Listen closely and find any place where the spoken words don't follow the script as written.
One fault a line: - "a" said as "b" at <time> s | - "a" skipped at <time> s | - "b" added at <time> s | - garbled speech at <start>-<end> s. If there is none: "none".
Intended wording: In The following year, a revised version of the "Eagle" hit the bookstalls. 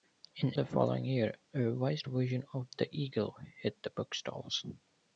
none